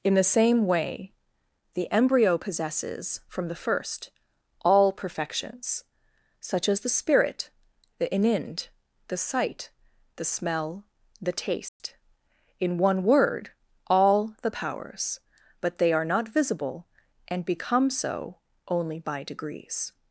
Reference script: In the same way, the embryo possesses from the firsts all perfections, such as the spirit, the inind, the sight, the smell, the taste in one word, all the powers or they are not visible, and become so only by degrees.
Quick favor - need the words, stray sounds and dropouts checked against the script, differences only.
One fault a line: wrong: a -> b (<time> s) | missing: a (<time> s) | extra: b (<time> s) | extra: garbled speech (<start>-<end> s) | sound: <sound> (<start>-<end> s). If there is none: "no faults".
wrong: firsts -> first (3.6 s)
sound: dropout (11.7-11.8 s)
wrong: or -> but (15.6 s)